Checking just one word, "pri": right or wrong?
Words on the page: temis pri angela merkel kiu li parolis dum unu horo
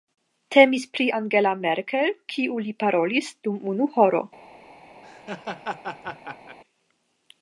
right